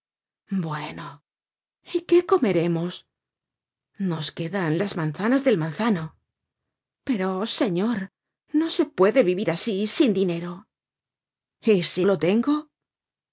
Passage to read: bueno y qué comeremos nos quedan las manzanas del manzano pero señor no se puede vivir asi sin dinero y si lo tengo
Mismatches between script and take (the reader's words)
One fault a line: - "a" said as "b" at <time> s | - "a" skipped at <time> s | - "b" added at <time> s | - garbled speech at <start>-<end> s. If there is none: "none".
none